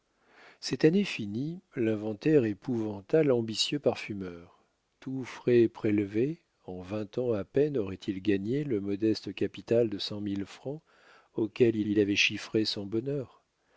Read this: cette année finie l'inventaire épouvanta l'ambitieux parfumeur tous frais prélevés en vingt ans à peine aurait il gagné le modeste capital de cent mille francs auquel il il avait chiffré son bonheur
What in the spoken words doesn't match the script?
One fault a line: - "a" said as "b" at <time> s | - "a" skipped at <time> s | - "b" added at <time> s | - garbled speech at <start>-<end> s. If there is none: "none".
none